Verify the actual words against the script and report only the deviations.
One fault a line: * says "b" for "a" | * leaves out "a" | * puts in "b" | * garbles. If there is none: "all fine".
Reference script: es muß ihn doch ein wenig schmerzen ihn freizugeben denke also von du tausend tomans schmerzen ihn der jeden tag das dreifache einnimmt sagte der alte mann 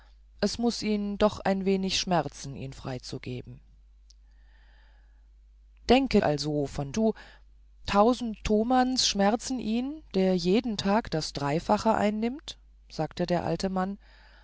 all fine